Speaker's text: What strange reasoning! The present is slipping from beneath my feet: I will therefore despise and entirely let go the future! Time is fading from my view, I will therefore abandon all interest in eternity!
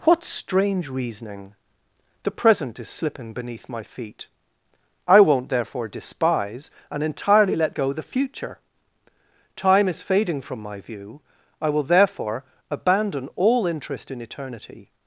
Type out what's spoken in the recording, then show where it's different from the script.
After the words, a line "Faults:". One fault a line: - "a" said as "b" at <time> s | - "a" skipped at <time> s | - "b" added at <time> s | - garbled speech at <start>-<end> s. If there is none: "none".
What strange reasoning! The present is slipping beneath my feet: I won't therefore despise and entirely let go the future! Time is fading from my view, I will therefore abandon all interest in eternity!
Faults:
- "from" skipped at 3.3 s
- "will" said as "won't" at 5.2 s